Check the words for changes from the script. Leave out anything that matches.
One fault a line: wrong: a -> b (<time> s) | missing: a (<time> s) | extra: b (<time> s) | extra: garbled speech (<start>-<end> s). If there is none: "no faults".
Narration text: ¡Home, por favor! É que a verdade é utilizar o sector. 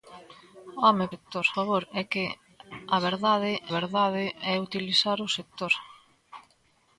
wrong: por -> sector (1.1 s)
extra: verdade (3.8 s)